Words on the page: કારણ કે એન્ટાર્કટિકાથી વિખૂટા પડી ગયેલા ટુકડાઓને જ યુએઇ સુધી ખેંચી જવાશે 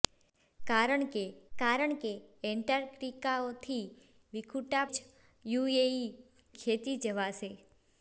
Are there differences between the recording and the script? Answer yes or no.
yes